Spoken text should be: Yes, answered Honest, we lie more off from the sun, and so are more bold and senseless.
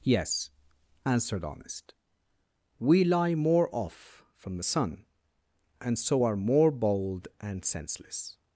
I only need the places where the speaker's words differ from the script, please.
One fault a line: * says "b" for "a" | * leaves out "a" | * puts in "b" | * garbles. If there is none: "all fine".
all fine